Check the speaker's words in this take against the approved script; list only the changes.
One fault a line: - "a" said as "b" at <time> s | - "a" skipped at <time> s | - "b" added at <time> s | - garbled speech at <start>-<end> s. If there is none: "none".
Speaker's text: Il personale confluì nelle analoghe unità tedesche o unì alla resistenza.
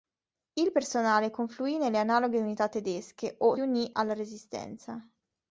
none